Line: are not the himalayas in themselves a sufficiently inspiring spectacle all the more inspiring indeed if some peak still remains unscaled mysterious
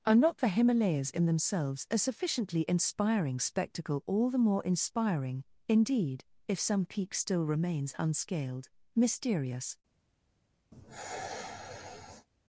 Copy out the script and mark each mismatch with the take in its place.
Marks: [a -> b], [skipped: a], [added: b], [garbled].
are not the himalayas in themselves a sufficiently inspiring spectacle all the more inspiring indeed if some peak still remains unscaled mysterious